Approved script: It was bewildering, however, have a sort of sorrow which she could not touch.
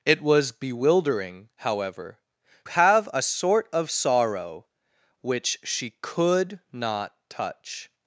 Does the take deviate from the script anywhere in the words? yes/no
no